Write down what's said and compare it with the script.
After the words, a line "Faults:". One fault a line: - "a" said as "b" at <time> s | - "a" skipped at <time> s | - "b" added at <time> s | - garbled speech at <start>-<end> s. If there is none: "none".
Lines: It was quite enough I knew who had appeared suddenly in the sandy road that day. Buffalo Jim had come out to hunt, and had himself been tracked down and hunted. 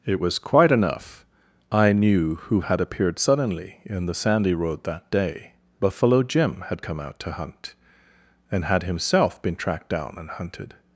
It was quite enough I knew who had appeared suddenly in the sandy road that day. Buffalo Jim had come out to hunt, and had himself been tracked down and hunted.
Faults:
none